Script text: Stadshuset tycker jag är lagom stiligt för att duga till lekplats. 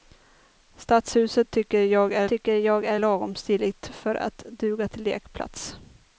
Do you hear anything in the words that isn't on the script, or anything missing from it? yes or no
yes